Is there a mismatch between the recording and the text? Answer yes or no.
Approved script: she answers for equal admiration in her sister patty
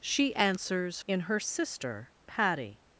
yes